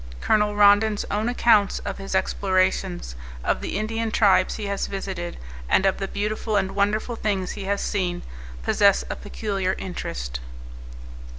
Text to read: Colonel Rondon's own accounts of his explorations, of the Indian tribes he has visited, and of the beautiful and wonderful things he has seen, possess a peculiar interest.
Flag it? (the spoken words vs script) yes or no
no